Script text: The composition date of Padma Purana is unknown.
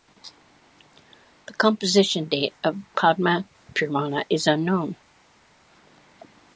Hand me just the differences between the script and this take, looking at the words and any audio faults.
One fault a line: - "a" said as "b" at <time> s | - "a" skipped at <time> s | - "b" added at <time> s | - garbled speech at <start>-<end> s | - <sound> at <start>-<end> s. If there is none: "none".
none